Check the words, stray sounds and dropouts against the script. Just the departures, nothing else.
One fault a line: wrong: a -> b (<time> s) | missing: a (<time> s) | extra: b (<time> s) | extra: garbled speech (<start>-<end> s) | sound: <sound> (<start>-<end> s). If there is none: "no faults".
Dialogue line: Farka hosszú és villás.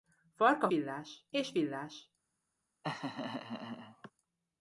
wrong: hosszú -> villás (0.7 s)
sound: laugh (2.8-4.1 s)